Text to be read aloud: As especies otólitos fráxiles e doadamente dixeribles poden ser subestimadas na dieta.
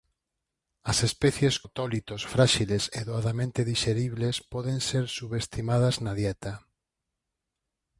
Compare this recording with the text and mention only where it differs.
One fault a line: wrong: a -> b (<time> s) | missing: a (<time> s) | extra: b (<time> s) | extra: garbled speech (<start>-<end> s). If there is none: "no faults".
no faults